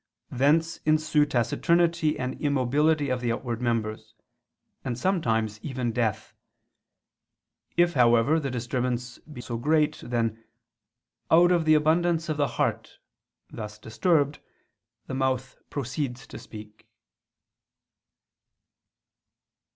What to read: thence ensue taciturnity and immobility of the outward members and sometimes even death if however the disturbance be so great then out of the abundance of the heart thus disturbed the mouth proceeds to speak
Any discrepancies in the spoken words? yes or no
no